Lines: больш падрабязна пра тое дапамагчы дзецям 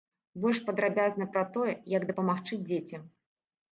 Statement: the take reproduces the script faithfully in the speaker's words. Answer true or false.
false